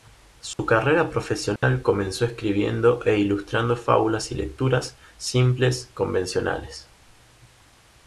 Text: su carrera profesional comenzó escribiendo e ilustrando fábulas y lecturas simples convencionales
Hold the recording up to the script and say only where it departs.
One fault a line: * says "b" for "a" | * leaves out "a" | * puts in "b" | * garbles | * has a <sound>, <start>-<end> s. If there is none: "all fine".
* has a dropout, 0.5-0.6 s
* has a dropout, 1.6-1.6 s